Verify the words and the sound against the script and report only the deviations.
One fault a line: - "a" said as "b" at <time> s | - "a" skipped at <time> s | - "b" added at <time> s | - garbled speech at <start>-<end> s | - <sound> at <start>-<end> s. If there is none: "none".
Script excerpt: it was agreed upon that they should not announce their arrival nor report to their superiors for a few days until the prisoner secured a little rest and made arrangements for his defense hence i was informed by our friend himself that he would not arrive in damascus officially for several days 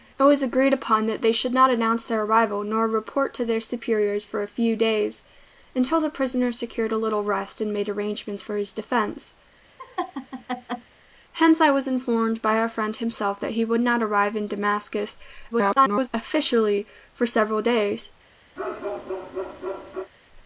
- laugh at 9.8-10.9 s
- garbled speech at 15.5-16.1 s
- bark at 18.6-20.1 s